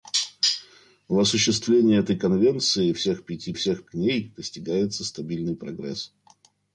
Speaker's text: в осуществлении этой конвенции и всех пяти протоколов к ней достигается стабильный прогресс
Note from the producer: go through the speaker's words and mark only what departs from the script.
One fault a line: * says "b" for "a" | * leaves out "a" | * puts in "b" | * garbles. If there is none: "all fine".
* says "всех" for "протоколов"